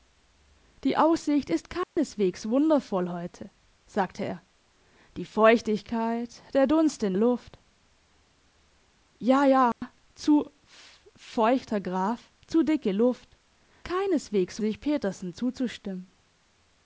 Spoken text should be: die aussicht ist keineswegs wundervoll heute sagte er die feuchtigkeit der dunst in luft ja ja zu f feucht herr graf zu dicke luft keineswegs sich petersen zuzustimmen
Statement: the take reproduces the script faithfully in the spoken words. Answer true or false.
true